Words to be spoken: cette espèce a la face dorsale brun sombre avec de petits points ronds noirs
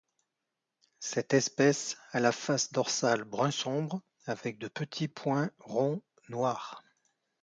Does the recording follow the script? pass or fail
pass